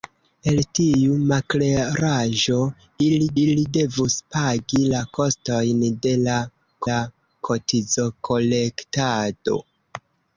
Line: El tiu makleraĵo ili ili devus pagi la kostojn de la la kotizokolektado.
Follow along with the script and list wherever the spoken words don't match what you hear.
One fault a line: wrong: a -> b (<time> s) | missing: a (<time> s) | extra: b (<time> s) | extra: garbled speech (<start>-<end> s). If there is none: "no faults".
no faults